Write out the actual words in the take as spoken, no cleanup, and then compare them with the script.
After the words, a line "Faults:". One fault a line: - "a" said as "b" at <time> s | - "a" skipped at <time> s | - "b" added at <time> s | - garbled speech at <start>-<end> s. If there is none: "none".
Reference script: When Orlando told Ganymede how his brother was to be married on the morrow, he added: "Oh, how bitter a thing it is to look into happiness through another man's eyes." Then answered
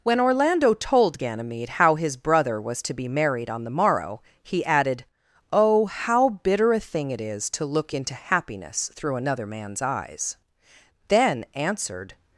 When Orlando told Ganymede how his brother was to be married on the morrow, he added: "Oh, how bitter a thing it is to look into happiness through another man's eyes." Then answered
Faults:
none